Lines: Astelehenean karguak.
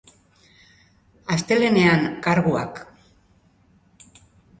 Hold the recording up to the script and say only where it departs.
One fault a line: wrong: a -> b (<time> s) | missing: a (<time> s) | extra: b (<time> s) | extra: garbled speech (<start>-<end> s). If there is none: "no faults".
no faults